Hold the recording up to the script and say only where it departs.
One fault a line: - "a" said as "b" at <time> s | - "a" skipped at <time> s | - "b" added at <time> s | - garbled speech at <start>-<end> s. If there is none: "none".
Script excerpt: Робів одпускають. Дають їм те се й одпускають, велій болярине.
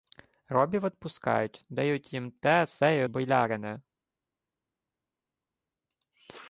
- "одпускають велій" skipped at 3.0 s